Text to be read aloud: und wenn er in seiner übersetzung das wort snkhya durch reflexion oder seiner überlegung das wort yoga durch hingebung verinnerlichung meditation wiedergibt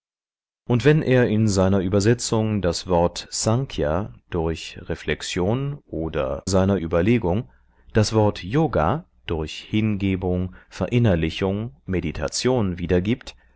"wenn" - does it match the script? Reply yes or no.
yes